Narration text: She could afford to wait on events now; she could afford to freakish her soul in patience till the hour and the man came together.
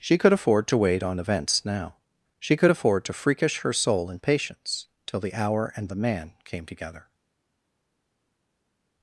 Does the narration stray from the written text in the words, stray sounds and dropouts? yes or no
no